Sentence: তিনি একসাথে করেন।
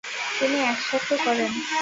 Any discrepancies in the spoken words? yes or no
no